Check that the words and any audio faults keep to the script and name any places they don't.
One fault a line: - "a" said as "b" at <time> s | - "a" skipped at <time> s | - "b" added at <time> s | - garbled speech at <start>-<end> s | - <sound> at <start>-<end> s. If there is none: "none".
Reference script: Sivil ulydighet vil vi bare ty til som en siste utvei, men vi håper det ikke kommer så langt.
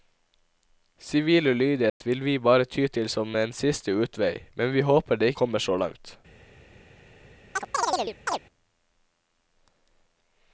- dropout at 1.9-2.0 s
- "ikke" skipped at 5.3 s
- chirp at 7.6-8.4 s